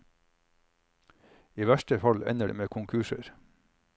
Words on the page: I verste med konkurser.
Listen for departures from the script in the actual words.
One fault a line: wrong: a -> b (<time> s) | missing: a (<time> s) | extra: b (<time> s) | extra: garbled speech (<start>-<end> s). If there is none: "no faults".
extra: fall ender det (2.0 s)